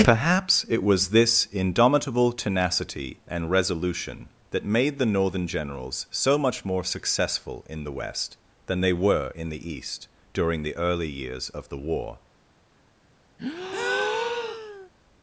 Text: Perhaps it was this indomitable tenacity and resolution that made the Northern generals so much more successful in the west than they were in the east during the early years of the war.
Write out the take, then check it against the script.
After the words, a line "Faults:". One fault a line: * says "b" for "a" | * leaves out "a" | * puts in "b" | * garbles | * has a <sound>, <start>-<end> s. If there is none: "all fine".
Perhaps it was this indomitable tenacity and resolution that made the Northern generals so much more successful in the west than they were in the east during the early years of the war.
Faults:
* has a breath, 13.4-14.9 s